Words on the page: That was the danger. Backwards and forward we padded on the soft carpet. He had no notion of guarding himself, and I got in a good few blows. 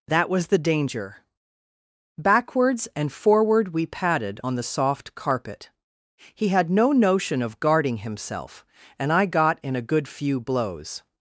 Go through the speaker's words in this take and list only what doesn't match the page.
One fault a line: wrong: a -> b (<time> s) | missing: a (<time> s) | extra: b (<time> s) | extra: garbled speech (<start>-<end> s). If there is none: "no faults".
no faults